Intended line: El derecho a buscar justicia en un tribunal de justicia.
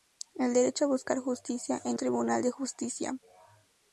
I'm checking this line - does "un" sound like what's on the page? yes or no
no